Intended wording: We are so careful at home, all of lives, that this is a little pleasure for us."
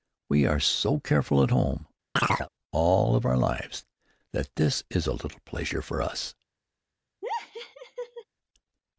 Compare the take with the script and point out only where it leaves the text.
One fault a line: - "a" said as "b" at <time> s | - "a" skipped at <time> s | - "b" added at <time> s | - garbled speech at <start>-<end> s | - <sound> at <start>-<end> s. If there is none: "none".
- chirp at 2.2-2.5 s
- "our" added at 3.3 s
- laugh at 7.2-8.2 s